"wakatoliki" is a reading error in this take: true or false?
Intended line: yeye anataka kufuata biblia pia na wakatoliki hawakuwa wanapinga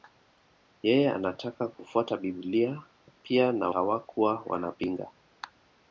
true